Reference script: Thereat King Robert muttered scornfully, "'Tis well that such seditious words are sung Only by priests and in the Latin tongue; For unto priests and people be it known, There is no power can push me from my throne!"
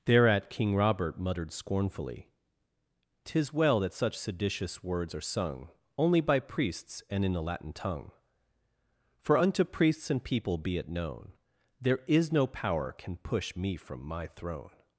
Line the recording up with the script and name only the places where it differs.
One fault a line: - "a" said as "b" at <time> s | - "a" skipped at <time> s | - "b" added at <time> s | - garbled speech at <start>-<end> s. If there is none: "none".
none